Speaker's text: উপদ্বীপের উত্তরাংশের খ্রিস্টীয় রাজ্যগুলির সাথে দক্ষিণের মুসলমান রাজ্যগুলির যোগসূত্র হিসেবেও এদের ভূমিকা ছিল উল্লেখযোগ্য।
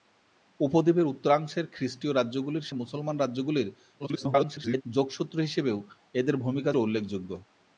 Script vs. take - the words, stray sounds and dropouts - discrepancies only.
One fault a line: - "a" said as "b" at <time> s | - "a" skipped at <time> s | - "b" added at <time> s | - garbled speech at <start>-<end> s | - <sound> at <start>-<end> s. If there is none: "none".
- "সাথে দক্ষিণের" skipped at 2.7 s
- garbled speech at 4.0-4.8 s
- "ছিল" skipped at 6.7 s